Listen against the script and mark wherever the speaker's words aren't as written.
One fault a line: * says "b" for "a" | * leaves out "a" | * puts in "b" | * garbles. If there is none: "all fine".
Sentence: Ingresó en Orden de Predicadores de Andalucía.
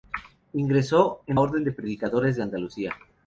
all fine